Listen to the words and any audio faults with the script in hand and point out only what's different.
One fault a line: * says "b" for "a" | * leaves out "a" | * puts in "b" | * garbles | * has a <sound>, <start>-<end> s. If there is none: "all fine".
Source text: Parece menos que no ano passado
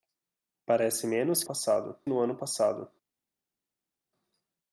* says "passado" for "que"